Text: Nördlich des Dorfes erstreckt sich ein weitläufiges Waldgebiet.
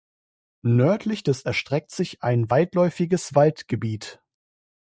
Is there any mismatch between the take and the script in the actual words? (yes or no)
yes